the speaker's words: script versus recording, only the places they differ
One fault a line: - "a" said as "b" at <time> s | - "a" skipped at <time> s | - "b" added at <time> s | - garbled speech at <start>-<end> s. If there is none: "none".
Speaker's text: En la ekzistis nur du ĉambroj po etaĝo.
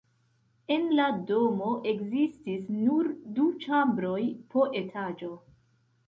- "domo" added at 1.3 s